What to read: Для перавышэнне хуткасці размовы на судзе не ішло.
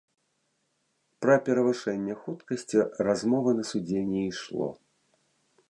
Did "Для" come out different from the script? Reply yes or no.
yes